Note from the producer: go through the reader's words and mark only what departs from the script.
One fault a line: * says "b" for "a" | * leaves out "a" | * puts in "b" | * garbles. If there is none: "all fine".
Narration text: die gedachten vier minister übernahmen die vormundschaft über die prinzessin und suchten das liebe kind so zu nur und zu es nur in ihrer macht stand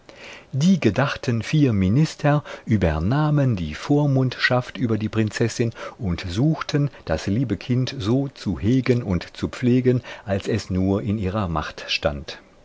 * says "hegen" for "nur"
* puts in "pflegen als"